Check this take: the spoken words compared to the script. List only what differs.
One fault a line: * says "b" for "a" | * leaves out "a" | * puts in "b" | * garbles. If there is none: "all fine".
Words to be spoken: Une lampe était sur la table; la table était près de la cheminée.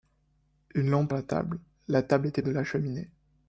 * leaves out "était sur"
* leaves out "près"